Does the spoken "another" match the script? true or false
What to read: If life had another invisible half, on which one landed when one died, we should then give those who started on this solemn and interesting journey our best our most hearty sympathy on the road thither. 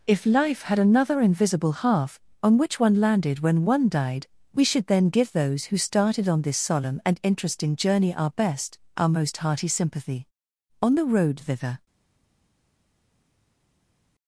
true